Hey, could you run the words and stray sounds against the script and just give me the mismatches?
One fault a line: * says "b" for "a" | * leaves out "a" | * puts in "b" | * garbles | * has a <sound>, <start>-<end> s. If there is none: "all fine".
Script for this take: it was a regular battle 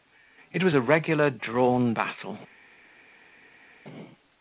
* puts in "drawn"